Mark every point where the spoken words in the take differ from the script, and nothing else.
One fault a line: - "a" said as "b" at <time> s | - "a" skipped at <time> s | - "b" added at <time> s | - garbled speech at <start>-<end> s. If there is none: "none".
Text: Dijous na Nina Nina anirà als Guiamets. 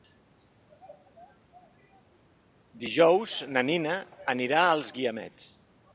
- "Nina" skipped at 4.0 s